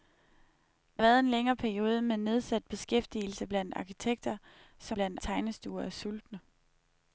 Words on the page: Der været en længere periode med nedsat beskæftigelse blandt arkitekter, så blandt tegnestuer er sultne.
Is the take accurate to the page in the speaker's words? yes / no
yes